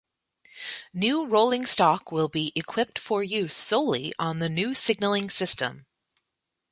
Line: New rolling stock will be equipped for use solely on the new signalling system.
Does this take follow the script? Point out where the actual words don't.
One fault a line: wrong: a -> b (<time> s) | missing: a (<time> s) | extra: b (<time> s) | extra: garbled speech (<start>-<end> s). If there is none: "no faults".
no faults